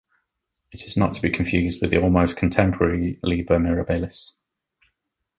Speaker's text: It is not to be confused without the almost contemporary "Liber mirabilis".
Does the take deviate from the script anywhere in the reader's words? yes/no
yes